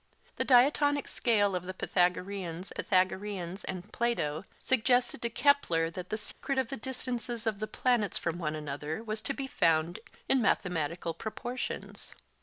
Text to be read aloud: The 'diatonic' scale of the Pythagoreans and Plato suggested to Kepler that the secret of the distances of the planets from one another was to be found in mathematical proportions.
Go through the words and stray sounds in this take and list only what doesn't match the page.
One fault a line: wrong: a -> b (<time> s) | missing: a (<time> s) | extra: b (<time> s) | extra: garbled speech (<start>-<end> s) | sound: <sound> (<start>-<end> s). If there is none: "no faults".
extra: Pythagoreans (2.7 s)
sound: dropout (6.3-6.4 s)